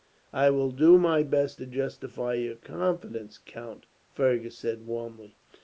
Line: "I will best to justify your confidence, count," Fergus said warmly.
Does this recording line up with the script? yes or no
no